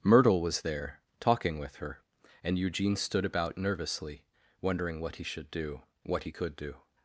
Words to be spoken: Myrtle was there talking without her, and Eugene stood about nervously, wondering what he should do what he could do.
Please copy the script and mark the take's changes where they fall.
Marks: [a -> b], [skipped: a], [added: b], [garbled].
Myrtle was there talking [without -> with] her, and Eugene stood about nervously, wondering what he should do what he could do.